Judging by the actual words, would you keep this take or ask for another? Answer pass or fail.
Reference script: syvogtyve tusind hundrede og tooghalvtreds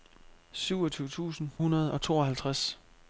pass